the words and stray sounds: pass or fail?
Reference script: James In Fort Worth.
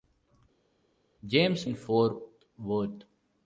pass